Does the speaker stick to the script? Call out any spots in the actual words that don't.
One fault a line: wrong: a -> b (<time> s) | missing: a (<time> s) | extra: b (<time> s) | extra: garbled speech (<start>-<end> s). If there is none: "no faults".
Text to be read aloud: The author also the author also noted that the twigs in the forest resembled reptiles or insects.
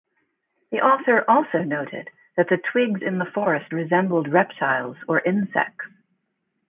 missing: the author also (1.6 s)